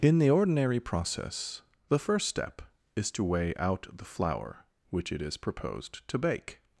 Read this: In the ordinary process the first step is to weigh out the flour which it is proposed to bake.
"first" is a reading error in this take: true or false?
false